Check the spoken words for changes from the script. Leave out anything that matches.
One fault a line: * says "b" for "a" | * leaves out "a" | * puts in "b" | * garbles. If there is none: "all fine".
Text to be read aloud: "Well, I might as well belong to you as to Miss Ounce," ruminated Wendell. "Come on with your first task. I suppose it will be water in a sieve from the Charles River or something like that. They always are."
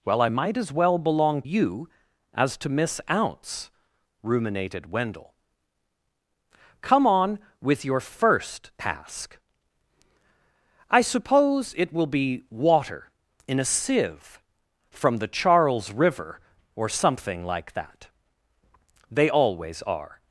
* leaves out "to"